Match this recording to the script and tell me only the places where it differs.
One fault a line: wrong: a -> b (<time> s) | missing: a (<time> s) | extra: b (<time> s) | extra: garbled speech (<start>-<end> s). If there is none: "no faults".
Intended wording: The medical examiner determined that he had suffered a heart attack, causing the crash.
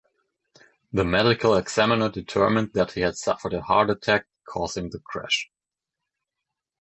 no faults